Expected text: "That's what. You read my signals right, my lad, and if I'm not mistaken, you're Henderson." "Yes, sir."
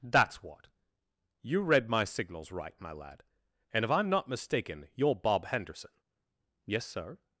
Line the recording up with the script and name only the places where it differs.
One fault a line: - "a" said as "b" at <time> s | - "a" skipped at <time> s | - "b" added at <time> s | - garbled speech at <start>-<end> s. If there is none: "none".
- "Bob" added at 5.2 s